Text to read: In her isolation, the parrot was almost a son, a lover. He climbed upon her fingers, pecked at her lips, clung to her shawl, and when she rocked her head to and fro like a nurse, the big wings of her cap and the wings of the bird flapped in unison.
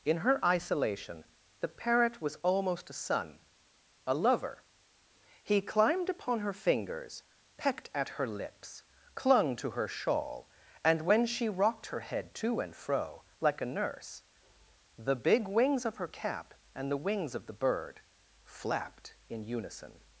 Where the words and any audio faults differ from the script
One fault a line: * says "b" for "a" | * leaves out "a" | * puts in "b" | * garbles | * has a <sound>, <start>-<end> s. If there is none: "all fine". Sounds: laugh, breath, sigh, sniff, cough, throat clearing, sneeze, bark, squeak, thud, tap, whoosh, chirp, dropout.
all fine